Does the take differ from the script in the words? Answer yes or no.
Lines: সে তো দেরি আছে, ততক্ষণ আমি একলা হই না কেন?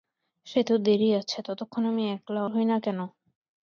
no